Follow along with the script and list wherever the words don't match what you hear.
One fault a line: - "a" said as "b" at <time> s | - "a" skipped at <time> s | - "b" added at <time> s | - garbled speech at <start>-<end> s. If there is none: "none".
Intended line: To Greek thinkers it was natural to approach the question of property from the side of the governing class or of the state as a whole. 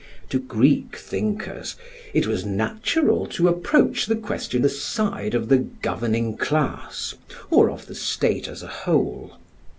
- "of property from" skipped at 4.6 s